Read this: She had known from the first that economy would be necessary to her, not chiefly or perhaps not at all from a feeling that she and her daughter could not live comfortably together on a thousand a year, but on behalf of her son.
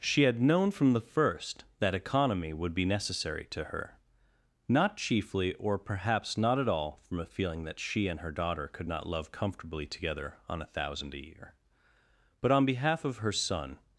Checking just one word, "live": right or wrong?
wrong